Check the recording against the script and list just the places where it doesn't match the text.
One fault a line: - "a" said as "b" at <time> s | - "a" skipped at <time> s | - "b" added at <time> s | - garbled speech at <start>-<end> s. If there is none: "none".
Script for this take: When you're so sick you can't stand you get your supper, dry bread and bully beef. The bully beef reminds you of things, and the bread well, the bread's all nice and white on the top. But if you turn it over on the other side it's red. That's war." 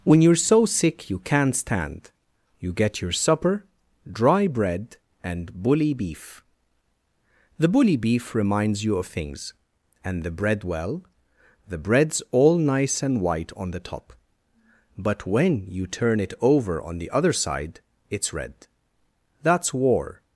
- "if" said as "when" at 15.3 s